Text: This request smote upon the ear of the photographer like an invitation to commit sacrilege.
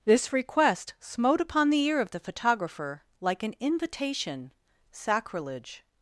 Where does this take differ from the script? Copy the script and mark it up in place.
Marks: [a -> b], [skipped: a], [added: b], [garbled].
This request smote upon the ear of the photographer like an invitation [skipped: to commit] sacrilege.